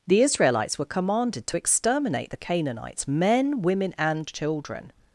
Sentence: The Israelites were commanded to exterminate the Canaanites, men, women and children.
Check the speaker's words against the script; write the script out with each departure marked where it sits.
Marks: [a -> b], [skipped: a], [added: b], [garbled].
The Israelites were commanded to exterminate the Canaanites, men, women and children.